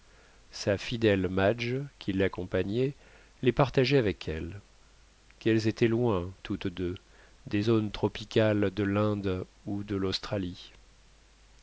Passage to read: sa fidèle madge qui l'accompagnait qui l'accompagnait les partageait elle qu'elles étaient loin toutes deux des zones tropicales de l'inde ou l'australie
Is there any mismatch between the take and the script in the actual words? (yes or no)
yes